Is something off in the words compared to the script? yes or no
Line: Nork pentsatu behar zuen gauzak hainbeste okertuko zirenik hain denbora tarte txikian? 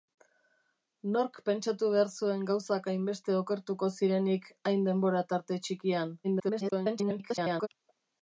yes